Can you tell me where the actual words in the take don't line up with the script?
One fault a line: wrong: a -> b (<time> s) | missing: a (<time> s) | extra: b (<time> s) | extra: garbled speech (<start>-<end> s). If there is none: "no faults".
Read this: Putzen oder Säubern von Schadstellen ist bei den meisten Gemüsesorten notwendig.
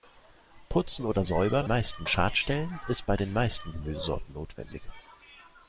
wrong: von -> meisten (1.7 s)